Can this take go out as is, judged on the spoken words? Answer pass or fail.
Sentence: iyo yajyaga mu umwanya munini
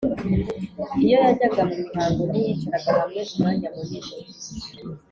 fail